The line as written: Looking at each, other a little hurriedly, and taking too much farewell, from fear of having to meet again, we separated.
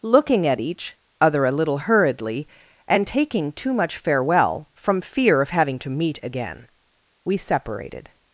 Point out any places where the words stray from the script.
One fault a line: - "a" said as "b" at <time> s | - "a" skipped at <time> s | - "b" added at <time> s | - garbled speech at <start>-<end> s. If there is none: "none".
none